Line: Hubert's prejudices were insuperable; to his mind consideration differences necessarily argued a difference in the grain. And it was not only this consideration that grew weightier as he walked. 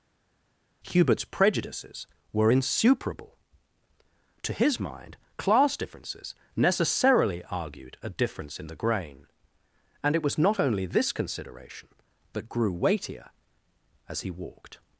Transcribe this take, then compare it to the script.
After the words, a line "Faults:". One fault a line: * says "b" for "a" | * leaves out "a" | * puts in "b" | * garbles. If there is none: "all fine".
Hubert's prejudices were insuperable; to his mind class differences necessarily argued a difference in the grain. And it was not only this consideration that grew weightier as he walked.
Faults:
* says "class" for "consideration"